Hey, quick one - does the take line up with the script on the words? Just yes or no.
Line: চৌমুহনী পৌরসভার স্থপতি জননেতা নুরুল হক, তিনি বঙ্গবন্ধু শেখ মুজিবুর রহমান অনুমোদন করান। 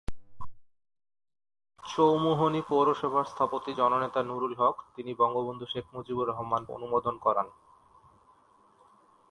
yes